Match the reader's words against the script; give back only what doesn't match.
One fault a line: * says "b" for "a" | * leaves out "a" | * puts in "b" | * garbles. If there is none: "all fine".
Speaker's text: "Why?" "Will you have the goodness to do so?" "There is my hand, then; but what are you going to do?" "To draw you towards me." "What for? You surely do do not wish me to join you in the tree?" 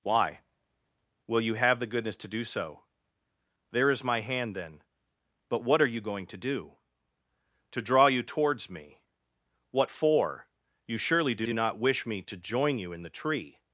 all fine